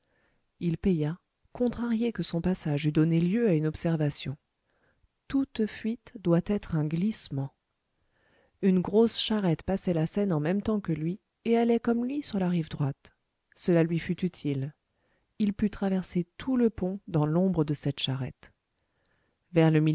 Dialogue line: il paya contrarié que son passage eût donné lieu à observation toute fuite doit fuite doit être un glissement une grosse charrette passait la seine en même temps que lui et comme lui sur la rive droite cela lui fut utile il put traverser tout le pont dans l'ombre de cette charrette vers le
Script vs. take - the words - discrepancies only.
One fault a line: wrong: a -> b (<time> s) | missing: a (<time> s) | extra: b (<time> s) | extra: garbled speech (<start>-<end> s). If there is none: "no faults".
extra: une (3.5 s)
missing: fuite doit (6.4 s)
extra: allait (11.6 s)